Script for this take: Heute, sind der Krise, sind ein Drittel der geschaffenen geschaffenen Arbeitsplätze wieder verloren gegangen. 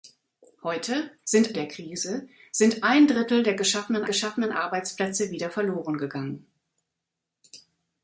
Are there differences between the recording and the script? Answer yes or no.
no